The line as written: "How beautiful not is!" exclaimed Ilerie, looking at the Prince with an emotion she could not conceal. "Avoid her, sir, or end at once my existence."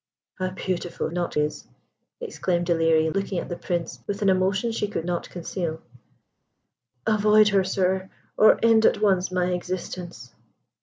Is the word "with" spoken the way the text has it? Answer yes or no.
yes